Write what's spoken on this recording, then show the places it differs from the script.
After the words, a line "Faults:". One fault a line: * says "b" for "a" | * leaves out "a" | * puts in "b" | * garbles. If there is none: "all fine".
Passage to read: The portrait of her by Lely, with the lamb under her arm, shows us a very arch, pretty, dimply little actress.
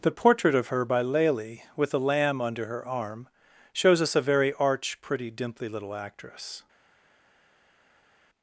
The portrait of her by Lely, with the lamb under her arm, shows us a very arch, pretty, dimply little actress.
Faults:
all fine